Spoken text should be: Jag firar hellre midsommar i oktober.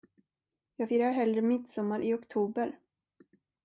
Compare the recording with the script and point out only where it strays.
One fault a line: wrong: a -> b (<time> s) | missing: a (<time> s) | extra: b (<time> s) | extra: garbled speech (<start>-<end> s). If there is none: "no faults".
no faults